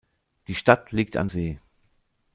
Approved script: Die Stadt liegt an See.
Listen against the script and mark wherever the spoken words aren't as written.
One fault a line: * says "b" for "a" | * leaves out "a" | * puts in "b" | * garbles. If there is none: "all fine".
all fine